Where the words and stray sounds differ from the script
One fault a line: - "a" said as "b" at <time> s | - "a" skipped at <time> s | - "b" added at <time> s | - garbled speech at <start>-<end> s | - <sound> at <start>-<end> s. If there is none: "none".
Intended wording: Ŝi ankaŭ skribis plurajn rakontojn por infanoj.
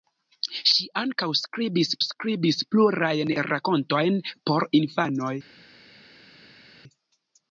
- "skribis" added at 2.1 s